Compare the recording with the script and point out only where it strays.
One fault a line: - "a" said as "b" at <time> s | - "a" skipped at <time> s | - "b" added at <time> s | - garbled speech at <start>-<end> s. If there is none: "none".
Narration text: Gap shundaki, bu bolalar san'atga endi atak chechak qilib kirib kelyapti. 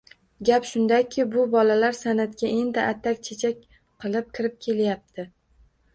none